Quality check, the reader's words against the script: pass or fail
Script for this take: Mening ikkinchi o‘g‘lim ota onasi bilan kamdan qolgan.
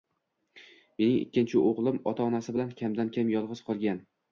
fail